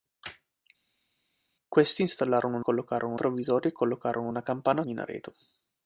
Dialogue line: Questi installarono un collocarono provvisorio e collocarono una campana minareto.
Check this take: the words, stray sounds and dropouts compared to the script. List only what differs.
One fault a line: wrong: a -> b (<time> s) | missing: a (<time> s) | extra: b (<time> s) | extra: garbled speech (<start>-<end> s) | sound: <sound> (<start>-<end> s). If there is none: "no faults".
no faults